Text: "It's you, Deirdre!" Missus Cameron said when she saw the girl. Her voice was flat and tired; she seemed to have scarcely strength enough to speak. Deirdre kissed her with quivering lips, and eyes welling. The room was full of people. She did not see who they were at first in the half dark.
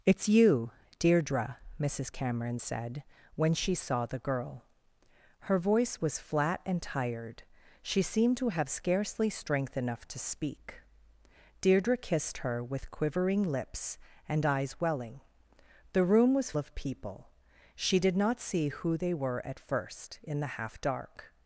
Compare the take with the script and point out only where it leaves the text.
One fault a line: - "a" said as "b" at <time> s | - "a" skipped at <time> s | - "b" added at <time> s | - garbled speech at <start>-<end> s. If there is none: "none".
- "full" skipped at 16.5 s